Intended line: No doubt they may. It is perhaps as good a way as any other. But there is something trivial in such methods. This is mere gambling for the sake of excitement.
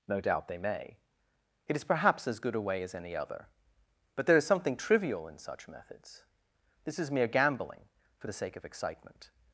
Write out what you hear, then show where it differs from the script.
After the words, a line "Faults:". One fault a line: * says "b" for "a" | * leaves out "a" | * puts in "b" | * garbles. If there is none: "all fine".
No doubt they may. It is perhaps as good a way as any other. But there is something trivial in such methods. This is mere gambling for the sake of excitement.
Faults:
all fine